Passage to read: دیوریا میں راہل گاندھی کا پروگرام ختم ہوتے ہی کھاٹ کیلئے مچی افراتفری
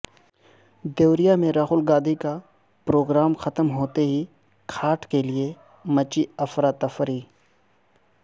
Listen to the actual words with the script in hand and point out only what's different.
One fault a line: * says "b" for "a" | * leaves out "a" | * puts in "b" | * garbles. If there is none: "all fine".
all fine